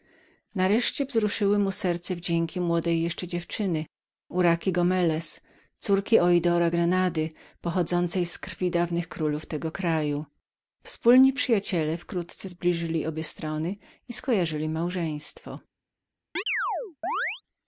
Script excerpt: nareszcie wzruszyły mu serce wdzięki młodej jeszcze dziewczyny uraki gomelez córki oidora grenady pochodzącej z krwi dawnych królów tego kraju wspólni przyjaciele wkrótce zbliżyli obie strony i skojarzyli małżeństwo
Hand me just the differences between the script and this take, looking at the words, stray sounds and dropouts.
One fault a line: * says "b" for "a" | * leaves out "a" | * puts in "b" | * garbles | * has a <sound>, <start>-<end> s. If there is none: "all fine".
* has a chirp, 16.4-17.4 s